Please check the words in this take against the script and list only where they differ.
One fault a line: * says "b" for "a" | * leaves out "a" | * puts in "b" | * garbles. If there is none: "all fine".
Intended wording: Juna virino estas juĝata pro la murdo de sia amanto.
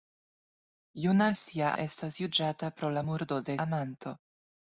* says "sia" for "virino"
* leaves out "sia"